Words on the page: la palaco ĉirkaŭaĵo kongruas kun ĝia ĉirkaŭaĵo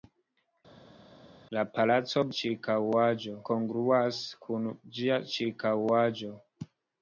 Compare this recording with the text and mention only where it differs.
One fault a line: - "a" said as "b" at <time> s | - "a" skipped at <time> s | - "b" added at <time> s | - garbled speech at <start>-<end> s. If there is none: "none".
none